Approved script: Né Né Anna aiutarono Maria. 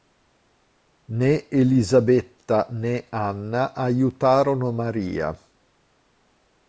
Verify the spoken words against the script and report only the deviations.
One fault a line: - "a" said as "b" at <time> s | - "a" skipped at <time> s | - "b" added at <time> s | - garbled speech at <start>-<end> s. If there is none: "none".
- "Elisabetta" added at 1.5 s